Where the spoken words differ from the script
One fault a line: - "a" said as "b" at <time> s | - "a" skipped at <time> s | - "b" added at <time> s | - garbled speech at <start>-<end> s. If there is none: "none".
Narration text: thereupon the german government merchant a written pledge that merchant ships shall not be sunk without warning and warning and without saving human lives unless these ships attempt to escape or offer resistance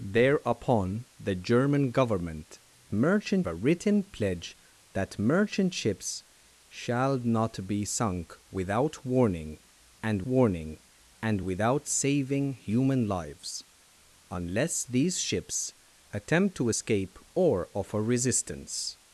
none